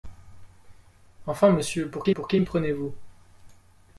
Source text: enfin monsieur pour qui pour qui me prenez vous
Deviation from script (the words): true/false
false